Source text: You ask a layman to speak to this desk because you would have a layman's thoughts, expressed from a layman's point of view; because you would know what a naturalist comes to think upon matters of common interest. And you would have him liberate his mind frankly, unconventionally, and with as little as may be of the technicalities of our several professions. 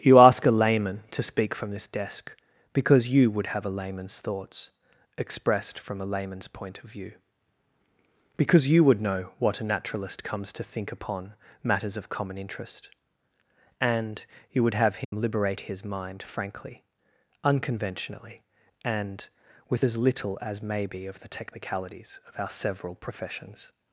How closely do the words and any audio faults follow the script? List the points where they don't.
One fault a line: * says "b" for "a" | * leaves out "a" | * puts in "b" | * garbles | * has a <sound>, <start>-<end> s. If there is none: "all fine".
* says "from" for "to"
* has a dropout, 15.0-15.1 s